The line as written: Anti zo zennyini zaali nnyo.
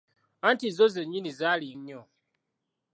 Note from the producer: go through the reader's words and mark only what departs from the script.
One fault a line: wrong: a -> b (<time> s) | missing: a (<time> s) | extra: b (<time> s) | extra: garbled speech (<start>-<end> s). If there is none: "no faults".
no faults